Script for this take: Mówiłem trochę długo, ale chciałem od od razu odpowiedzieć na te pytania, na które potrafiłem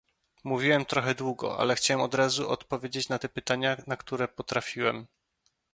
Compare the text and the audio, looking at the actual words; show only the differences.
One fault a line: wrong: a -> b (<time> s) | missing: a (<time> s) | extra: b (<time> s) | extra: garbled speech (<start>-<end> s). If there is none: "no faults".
missing: od (2.1 s)